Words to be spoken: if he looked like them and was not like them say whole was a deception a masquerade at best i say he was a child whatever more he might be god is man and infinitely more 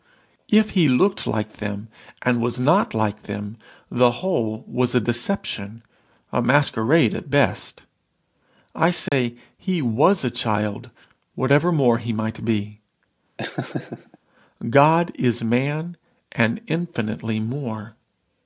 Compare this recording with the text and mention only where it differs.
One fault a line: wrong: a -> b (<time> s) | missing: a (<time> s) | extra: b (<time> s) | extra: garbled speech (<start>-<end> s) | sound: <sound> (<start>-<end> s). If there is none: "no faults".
wrong: say -> the (3.9 s)
sound: dropout (9.1-9.1 s)
sound: laugh (13.4-14.2 s)